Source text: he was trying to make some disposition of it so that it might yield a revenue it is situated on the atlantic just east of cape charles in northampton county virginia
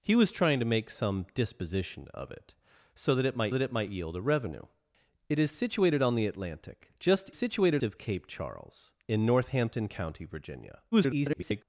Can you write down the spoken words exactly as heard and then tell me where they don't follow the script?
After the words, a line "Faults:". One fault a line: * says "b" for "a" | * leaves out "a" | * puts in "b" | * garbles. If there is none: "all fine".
he was trying to make some disposition of it so that it might that it might yield a revenue it is situated on the atlantic just situated of cape charles in northampton county virginia [garbled]
Faults:
* puts in "that it might"
* says "situated" for "east"
* garbles